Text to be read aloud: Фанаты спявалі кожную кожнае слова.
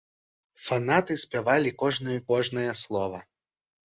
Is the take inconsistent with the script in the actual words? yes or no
no